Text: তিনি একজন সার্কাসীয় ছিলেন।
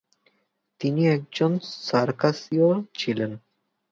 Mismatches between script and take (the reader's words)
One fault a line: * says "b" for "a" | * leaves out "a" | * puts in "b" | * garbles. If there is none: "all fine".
all fine